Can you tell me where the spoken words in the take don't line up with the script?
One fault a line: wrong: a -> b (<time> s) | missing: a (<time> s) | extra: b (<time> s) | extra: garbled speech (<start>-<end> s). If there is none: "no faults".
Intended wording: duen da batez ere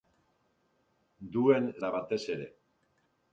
no faults